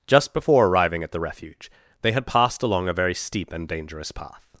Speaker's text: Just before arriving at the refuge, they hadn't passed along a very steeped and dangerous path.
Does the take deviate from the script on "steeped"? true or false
true